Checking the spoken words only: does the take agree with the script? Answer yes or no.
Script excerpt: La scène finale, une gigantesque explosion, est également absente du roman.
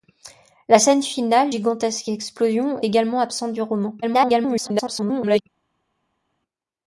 no